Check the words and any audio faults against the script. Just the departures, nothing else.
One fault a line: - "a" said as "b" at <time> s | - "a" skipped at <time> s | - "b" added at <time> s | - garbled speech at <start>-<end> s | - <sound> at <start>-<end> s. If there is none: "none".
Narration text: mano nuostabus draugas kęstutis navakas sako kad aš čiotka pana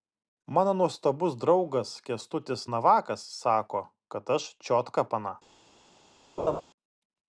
- laugh at 6.4-6.6 s